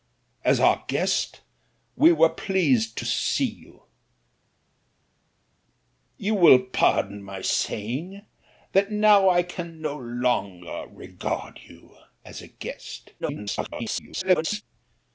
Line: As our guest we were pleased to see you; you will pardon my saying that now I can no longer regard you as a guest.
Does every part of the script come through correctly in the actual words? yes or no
no